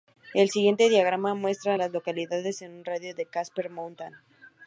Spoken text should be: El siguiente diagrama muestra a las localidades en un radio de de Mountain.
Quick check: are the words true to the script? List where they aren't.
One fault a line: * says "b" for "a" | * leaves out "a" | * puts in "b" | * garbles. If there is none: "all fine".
* puts in "Casper"